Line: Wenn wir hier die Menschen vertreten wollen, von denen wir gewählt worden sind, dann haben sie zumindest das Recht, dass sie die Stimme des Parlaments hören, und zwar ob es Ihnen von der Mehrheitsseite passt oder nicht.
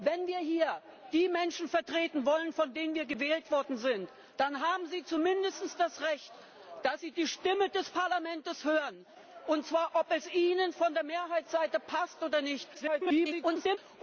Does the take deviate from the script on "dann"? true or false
false